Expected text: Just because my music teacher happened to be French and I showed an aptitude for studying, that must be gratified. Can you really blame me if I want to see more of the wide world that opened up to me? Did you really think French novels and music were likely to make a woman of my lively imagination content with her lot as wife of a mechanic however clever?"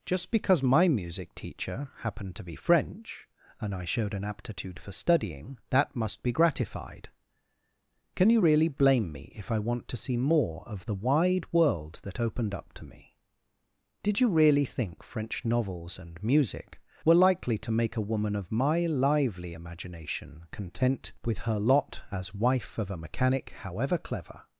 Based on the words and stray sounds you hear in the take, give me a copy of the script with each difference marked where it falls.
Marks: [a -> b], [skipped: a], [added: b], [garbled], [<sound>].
Just because my music teacher happened to be French and I showed an aptitude for studying, that must be gratified. Can you really blame me if I want to see more of the wide world that opened up to me? Did you really think French novels and music were likely to make a woman of my lively imagination content with her lot as wife of a mechanic however clever?"